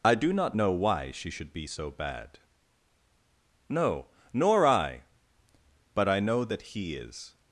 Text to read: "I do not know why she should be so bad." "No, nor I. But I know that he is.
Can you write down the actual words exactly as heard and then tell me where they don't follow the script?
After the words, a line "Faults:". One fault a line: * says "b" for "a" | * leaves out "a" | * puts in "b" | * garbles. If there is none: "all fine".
"I do not know why she should be so bad." "No, nor I. But I know that he is.
Faults:
all fine